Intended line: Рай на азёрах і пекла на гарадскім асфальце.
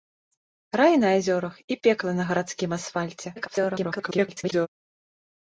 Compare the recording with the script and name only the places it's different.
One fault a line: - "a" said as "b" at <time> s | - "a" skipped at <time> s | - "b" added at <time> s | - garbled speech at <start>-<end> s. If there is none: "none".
- garbled speech at 3.4-4.7 s